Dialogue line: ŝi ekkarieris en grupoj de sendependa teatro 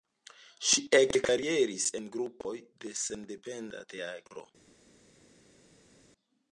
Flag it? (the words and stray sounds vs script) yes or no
no